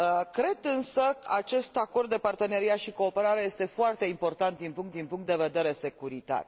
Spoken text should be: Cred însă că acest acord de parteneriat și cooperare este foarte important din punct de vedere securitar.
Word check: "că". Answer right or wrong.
wrong